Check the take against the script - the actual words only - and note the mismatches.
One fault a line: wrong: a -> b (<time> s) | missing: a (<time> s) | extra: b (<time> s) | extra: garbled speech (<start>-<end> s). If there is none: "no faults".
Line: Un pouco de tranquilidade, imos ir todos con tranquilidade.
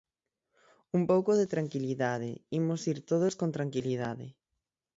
no faults